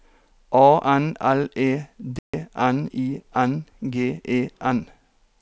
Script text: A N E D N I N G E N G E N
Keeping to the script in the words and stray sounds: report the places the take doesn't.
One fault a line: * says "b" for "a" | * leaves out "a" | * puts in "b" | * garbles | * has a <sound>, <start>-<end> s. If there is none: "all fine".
* puts in "L"
* has a dropout, 2.2-2.3 s
* leaves out "G E N"